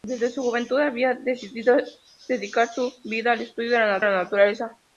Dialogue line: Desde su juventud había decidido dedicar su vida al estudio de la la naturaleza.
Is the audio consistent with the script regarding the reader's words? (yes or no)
yes